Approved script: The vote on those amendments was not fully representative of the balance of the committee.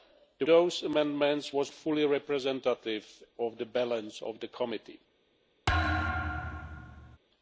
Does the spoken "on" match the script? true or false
false